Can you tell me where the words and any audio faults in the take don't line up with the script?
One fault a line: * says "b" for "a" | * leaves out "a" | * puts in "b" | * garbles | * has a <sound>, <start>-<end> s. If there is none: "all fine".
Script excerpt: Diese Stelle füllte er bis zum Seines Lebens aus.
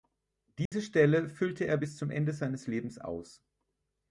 * has a dropout, 0.7-0.7 s
* puts in "Ende"